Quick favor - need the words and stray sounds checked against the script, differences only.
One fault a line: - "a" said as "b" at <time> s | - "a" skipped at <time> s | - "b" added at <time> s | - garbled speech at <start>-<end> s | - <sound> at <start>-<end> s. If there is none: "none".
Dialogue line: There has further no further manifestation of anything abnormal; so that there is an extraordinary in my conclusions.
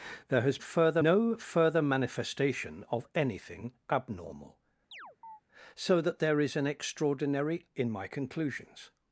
- chirp at 4.9-5.4 s